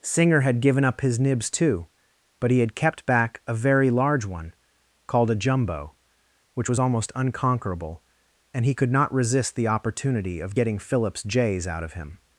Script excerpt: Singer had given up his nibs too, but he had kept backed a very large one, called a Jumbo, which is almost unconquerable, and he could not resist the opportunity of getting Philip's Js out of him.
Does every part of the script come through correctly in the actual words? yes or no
no